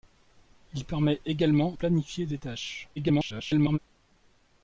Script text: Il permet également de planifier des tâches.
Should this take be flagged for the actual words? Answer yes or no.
yes